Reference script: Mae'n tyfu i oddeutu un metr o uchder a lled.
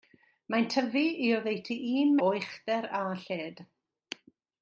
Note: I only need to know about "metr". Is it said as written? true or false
false